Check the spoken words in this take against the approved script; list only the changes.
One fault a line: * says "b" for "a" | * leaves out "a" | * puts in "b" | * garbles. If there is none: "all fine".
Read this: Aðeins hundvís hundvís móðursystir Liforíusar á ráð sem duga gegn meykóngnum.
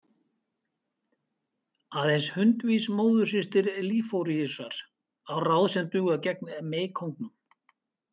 * leaves out "hundvís"